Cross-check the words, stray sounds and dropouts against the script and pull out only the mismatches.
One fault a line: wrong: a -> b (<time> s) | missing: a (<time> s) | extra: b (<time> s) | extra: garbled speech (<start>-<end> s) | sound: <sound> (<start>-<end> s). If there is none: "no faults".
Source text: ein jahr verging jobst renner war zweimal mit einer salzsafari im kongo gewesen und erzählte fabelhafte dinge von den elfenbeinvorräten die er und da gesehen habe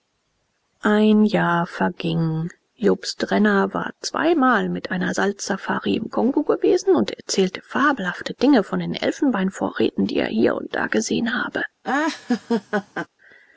extra: hier (10.3 s)
sound: laugh (11.8-13.1 s)